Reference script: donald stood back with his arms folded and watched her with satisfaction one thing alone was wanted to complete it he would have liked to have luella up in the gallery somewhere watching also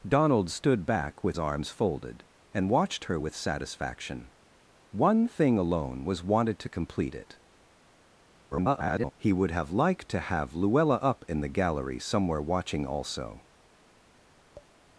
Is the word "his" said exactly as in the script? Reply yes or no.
no